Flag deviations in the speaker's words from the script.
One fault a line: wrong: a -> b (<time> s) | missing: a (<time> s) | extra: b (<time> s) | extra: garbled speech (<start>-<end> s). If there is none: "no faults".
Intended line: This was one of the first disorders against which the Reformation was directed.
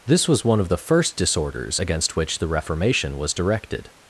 no faults